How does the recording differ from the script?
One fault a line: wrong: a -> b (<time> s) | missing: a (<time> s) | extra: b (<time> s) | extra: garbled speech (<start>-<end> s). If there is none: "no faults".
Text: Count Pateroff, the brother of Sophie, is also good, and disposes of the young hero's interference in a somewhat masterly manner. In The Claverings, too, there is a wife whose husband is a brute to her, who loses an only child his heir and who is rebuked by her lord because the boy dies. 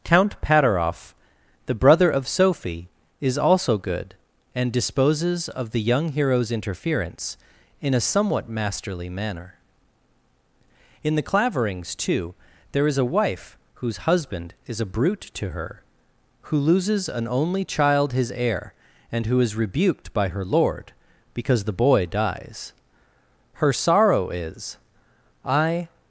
extra: Her sorrow is I (23.6 s)